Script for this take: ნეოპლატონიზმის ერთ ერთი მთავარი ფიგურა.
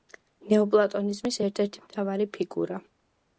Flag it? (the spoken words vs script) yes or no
no